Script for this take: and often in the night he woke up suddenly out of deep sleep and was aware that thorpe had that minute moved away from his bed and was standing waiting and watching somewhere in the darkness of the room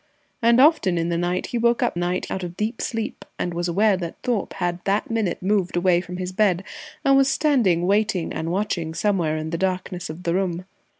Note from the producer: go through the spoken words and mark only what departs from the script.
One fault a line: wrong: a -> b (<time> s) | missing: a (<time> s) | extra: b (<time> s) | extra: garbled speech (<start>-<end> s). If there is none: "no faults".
wrong: suddenly -> night (2.0 s)